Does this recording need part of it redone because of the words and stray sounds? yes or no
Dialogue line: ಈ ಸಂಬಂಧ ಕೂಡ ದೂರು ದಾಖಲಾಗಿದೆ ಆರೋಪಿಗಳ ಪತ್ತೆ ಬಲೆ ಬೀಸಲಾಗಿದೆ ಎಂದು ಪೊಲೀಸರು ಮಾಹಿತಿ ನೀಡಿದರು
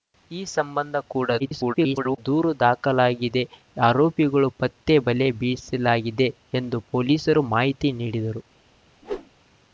yes